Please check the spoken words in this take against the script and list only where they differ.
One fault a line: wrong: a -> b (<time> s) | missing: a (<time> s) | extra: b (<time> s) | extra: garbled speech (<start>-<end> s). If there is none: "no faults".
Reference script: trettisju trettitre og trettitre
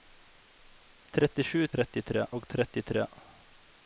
no faults